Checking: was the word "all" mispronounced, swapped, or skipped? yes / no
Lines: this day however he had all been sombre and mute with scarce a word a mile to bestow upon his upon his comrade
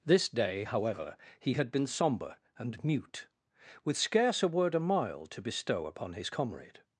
yes